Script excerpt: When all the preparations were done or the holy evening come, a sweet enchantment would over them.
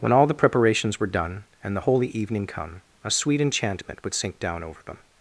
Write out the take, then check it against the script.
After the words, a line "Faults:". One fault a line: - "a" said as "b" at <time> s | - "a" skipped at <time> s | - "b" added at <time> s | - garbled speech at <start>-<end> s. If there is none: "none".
When all the preparations were done and the holy evening come, a sweet enchantment would sink down over them.
Faults:
- "or" said as "and" at 1.6 s
- "sink down" added at 4.1 s